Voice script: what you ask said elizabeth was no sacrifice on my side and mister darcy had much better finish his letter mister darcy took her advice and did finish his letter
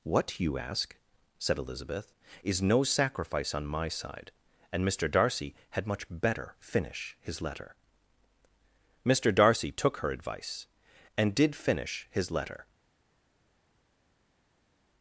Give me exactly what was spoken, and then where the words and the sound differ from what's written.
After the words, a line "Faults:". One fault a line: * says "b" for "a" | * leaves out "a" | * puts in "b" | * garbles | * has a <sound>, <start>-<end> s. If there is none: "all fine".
what you ask said elizabeth is no sacrifice on my side and mister darcy had much better finish his letter mister darcy took her advice and did finish his letter
Faults:
* says "is" for "was"